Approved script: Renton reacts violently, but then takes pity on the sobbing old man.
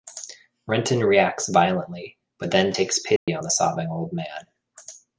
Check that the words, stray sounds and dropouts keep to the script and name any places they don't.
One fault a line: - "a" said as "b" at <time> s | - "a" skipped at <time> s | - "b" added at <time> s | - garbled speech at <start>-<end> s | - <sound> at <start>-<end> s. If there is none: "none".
- dropout at 3.2-3.3 s